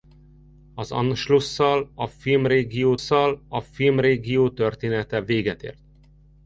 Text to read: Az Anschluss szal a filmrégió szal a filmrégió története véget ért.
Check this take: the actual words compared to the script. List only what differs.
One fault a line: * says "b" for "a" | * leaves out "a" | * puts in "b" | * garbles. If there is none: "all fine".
all fine